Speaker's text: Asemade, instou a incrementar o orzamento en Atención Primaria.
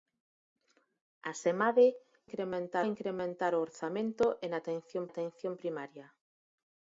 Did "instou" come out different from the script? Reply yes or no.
yes